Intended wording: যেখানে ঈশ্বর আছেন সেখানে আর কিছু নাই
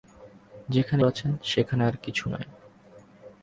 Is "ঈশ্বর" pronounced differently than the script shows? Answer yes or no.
yes